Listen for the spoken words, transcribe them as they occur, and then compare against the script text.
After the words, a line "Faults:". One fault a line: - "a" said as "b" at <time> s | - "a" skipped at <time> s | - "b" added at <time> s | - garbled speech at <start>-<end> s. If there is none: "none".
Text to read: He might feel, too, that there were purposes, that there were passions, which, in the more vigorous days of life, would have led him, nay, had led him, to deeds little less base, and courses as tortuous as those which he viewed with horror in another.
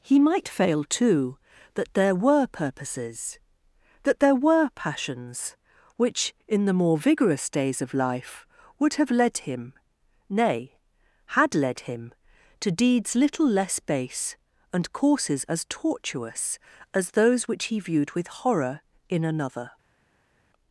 He might fail, too, that there were purposes, that there were passions, which, in the more vigorous days of life, would have led him, nay, had led him, to deeds little less base, and courses as tortuous as those which he viewed with horror in another.
Faults:
- "feel" said as "fail" at 0.5 s